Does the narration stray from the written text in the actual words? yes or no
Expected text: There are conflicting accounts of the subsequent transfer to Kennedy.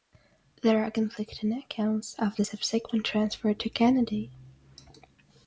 no